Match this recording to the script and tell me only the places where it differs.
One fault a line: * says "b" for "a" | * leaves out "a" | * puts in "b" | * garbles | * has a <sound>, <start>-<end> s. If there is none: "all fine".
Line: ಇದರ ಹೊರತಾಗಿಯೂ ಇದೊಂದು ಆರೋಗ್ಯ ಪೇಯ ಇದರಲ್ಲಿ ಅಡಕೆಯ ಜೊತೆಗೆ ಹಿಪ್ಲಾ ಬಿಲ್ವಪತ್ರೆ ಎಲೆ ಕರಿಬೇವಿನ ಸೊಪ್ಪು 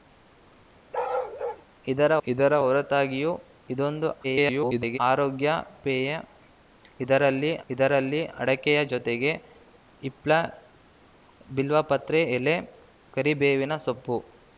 * has a bark, 0.9-1.6 s
* puts in "ಇದರ"
* garbles
* puts in "ಇದರಲ್ಲಿ"